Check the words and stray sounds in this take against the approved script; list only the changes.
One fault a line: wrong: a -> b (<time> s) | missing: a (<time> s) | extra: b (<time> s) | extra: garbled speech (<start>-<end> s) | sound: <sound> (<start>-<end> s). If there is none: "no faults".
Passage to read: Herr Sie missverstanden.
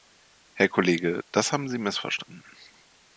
extra: Kollege das haben (0.7 s)